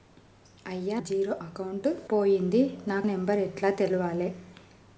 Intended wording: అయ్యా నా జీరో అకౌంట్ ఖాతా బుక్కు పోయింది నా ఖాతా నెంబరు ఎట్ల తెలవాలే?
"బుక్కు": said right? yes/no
no